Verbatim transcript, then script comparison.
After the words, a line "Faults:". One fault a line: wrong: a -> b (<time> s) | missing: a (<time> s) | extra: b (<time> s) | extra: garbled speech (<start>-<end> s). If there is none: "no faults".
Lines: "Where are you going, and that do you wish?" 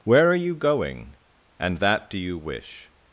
"Where are you going, and that do you wish?"
Faults:
no faults